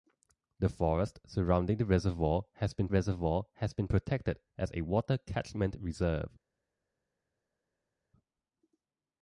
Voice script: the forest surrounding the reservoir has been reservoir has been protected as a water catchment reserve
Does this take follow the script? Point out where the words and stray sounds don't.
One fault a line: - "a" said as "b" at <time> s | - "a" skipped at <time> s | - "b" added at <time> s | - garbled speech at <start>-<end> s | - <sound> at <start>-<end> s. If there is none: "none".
none